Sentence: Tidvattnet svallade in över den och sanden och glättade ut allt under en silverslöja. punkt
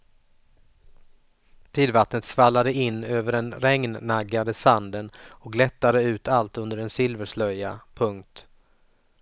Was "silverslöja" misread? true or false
false